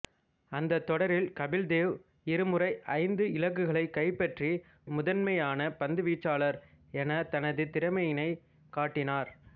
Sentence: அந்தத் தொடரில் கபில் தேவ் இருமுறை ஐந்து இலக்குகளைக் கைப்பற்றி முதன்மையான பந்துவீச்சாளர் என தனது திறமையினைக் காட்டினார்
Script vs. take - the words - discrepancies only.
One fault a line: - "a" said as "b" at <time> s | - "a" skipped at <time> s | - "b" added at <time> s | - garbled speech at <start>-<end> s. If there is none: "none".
none